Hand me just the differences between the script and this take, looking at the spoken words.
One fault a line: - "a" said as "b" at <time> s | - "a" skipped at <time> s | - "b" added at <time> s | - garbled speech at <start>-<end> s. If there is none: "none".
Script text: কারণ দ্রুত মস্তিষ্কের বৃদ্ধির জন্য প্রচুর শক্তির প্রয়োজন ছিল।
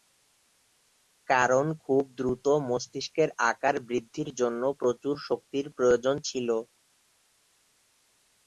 - "খুব" added at 1.8 s
- "আকার" added at 3.5 s